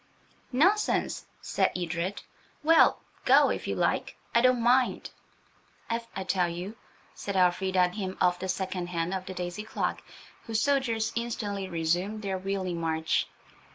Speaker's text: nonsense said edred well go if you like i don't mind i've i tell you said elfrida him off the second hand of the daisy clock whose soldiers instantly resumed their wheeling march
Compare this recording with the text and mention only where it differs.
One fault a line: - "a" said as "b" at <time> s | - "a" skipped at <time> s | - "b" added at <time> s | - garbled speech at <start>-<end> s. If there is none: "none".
none